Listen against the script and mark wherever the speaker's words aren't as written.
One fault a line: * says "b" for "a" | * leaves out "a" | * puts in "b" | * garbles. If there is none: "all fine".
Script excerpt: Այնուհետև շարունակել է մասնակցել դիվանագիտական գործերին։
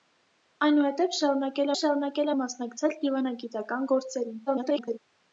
* puts in "շարունակել"
* garbles